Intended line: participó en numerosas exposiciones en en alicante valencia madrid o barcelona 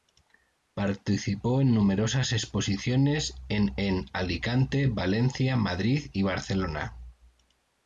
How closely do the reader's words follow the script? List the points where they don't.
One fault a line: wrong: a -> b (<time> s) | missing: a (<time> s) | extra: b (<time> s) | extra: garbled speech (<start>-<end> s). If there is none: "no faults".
wrong: o -> y (6.1 s)